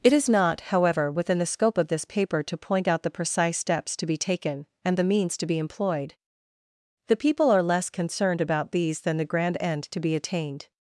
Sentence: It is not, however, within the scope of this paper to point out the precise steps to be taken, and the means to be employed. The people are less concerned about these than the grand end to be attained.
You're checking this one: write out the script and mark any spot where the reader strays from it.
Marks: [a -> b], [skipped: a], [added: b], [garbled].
It is not, however, within the scope of this paper to point out the precise steps to be taken, and the means to be employed. The people are less concerned about these than the grand end to be attained.